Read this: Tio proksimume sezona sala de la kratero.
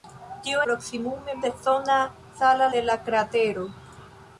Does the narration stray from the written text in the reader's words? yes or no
no